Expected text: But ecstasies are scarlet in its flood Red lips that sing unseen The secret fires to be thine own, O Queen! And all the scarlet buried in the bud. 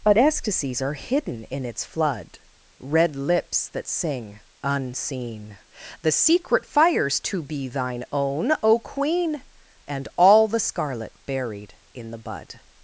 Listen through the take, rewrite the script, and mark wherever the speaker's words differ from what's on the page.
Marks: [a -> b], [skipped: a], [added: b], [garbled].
But ecstasies are [scarlet -> hidden] in its flood Red lips that sing unseen The secret fires to be thine own, O Queen! And all the scarlet buried in the bud.